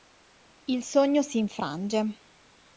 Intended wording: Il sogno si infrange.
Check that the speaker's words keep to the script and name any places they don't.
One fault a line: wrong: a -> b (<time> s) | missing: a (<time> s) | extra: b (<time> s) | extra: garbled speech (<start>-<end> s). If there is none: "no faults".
no faults